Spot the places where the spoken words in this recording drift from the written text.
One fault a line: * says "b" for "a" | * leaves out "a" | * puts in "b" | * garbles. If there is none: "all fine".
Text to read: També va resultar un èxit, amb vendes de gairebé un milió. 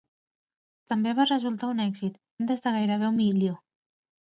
* leaves out "amb"